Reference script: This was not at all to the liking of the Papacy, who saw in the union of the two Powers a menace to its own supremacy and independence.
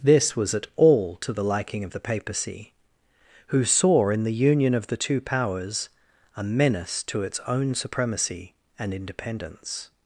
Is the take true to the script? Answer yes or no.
no